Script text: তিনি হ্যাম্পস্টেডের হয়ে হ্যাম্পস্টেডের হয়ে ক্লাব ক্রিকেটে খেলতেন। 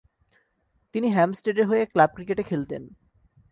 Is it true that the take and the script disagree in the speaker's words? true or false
true